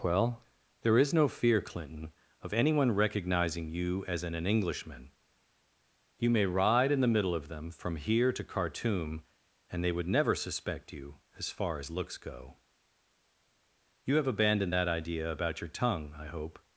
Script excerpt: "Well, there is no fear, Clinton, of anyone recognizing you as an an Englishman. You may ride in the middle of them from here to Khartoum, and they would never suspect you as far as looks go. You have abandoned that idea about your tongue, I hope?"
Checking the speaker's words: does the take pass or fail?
pass